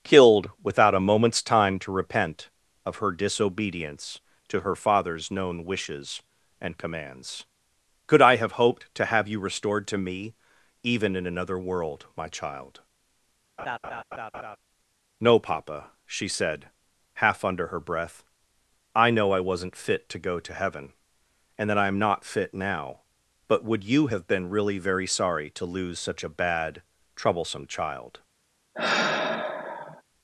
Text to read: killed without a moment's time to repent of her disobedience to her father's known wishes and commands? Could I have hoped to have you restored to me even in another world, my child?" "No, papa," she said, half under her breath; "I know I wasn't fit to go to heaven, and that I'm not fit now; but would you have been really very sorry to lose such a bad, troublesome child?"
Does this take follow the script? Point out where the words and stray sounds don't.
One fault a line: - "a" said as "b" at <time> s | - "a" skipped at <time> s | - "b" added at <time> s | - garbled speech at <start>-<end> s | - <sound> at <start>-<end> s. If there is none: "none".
- laugh at 13.6-14.6 s
- sigh at 28.7-30.0 s